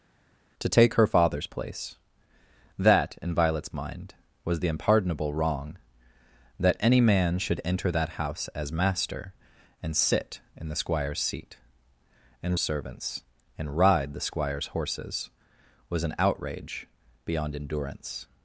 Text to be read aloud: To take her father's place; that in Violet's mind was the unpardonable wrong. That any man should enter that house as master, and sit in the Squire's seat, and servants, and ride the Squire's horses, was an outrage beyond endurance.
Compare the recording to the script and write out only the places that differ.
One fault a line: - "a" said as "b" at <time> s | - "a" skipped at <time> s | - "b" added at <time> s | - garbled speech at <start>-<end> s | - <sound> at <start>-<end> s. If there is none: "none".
none